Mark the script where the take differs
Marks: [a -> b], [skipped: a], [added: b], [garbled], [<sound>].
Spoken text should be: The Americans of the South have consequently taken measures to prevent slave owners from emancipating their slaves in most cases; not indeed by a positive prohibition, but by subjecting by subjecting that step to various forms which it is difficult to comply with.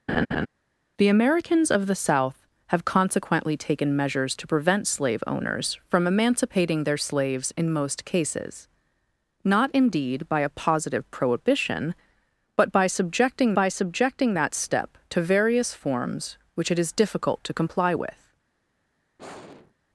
[laugh] The Americans of the South have consequently taken measures to prevent slave owners from emancipating their slaves in most cases; not indeed by a positive prohibition, but by subjecting by subjecting that step to various forms which it is difficult to comply with. [sigh]